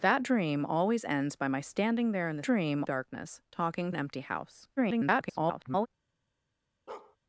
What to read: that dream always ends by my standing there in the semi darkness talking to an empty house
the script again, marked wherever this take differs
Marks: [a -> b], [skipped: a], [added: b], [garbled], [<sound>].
that dream always ends by my standing there in the [semi -> dream] darkness talking [skipped: to] an empty house [garbled] [bark]